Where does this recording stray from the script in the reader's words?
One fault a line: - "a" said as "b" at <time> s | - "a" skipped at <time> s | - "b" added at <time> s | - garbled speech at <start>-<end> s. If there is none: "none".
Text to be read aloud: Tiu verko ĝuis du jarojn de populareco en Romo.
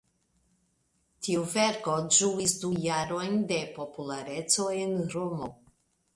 none